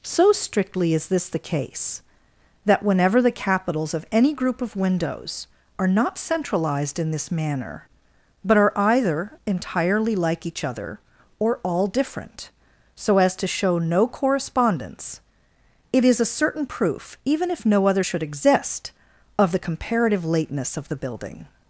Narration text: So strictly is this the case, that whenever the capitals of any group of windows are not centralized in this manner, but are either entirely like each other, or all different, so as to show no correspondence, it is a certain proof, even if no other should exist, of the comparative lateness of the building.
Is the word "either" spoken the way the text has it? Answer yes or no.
yes